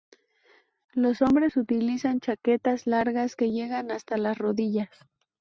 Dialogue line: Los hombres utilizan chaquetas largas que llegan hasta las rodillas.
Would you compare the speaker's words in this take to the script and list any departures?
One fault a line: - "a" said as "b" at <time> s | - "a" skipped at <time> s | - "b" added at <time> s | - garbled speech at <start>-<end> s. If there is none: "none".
none